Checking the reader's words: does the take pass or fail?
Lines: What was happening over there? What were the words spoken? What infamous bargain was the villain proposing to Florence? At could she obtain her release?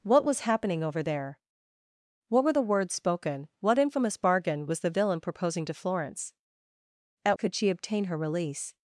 pass